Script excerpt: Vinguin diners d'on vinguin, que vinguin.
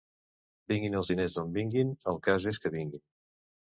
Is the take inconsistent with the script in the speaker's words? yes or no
yes